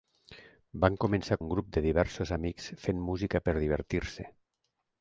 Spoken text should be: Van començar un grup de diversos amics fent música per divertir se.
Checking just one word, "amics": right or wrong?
right